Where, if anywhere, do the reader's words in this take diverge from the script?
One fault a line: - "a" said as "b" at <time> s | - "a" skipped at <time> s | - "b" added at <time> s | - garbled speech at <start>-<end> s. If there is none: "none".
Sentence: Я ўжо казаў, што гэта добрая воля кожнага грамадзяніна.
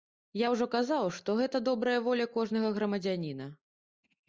none